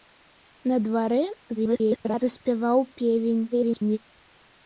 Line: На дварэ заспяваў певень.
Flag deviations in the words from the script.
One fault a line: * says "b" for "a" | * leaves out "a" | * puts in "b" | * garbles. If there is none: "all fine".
* garbles
* garbles